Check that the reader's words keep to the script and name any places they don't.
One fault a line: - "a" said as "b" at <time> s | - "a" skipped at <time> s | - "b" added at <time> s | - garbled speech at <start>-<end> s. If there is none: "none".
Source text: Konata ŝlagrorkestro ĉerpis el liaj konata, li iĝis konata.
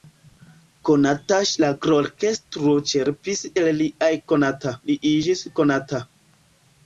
none